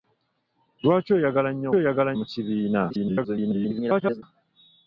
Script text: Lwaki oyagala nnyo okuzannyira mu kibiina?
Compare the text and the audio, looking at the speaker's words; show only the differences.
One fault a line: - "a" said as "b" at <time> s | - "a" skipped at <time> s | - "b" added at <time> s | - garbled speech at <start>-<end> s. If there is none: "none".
- "okuzannyira" said as "oyagala" at 1.8 s
- garbled speech at 2.9-4.2 s